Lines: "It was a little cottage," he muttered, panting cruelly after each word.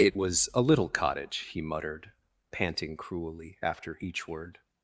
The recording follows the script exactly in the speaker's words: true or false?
true